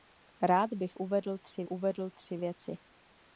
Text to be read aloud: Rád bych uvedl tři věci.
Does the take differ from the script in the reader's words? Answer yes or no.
yes